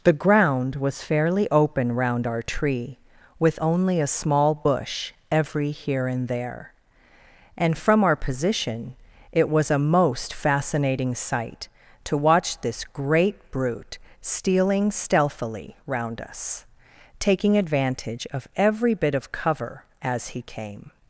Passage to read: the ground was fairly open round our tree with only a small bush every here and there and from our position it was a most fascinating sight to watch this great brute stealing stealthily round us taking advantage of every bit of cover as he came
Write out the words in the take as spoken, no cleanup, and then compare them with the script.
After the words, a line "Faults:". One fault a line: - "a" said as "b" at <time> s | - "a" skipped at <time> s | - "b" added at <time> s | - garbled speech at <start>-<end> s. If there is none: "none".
the ground was fairly open round our tree with only a small bush every here and there and from our position it was a most fascinating sight to watch this great brute stealing stealthily round us taking advantage of every bit of cover as he came
Faults:
none